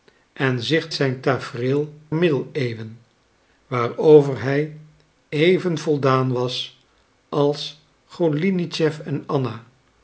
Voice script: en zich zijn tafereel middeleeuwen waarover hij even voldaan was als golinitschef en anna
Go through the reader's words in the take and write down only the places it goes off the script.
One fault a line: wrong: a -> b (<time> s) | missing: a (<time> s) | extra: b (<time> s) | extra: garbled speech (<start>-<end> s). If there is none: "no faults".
no faults